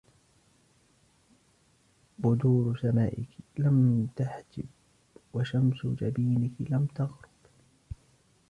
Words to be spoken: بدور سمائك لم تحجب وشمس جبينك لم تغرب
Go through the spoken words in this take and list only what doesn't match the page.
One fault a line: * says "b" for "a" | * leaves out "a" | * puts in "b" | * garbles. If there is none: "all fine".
all fine